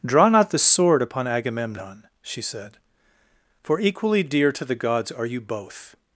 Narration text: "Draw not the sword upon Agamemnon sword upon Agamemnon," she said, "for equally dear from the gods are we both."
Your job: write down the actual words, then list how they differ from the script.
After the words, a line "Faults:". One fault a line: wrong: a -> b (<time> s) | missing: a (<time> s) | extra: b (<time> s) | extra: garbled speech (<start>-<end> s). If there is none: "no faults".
"Draw not the sword upon Agamemnon," she said, "for equally dear to the gods are you both."
Faults:
missing: sword upon Agamemnon (2.0 s)
wrong: from -> to (4.5 s)
wrong: we -> you (5.2 s)